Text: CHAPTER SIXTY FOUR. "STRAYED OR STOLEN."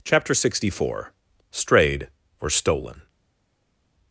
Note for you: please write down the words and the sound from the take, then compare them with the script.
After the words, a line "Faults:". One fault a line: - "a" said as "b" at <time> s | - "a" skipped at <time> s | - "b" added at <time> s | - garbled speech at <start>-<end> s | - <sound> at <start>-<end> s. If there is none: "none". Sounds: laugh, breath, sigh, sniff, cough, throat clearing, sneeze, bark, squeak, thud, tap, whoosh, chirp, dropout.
CHAPTER SIXTY FOUR. "STRAYED OR STOLEN."
Faults:
none